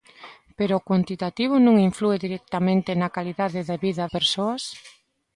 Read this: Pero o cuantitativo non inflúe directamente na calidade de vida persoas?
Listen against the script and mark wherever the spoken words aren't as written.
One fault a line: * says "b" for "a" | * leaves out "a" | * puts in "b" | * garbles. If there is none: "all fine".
all fine